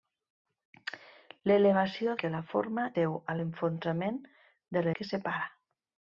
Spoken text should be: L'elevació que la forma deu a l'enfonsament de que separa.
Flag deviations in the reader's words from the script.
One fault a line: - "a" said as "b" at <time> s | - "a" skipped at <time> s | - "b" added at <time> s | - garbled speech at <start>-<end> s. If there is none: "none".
none